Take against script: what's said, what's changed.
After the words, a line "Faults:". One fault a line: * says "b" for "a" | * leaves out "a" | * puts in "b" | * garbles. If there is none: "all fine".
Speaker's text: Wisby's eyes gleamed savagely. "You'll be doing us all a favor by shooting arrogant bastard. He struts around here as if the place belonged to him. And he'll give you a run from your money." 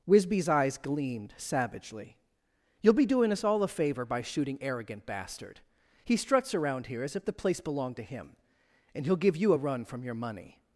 Wisby's eyes gleamed savagely. "You'll be doing us all a favor by shooting arrogant bastard. He struts around here as if the place belonged to him. And he'll give you a run from your money."
Faults:
all fine